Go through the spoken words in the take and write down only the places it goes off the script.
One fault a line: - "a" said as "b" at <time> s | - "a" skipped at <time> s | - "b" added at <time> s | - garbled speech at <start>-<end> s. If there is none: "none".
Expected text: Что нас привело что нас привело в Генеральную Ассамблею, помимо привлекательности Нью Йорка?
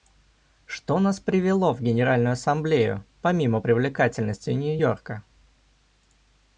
- "что нас привело" skipped at 1.8 s